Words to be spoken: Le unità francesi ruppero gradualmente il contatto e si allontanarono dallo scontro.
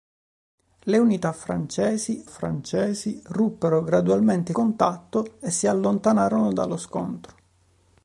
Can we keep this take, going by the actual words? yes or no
no